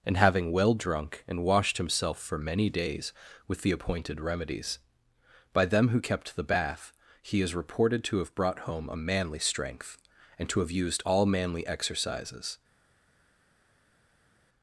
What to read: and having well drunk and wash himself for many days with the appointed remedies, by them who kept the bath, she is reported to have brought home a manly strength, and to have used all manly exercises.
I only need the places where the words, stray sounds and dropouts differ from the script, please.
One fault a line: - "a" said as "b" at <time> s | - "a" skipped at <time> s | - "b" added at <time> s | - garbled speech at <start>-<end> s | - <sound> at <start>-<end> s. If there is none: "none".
- "wash" said as "washed" at 1.4 s
- "she" said as "he" at 7.2 s